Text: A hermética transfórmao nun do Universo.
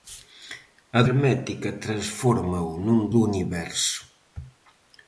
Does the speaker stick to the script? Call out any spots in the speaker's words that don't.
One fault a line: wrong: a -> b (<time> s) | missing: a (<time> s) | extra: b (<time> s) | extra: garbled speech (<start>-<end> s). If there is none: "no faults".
no faults